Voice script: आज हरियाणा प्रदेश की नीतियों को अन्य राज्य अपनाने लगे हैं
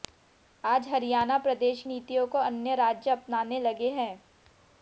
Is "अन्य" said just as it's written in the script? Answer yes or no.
yes